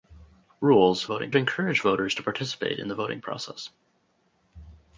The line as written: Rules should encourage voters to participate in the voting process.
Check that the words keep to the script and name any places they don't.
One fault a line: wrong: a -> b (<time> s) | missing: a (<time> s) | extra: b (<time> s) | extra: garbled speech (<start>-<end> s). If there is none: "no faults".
wrong: should -> voting (1.1 s)